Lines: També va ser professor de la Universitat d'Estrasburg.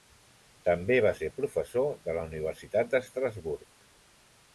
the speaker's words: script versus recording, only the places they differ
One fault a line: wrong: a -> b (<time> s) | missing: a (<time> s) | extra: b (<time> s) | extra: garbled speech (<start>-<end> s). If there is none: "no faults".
no faults